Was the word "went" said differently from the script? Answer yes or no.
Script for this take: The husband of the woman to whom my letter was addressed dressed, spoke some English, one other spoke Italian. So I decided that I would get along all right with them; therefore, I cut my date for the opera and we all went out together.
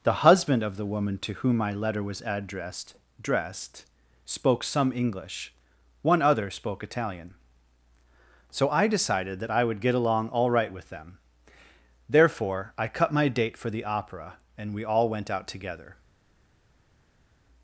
no